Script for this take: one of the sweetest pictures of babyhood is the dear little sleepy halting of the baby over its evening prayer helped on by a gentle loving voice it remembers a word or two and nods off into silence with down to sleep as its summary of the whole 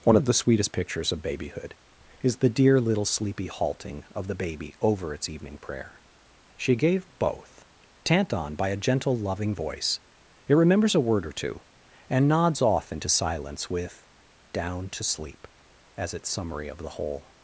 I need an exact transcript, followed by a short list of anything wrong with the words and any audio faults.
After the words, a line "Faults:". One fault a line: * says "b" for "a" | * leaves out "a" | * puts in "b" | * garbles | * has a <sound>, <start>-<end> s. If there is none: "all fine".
one of the sweetest pictures of babyhood is the dear little sleepy halting of the baby over its evening prayer she gave both tant on by a gentle loving voice it remembers a word or two and nods off into silence with down to sleep as its summary of the whole
Faults:
* says "she gave both tant" for "helped"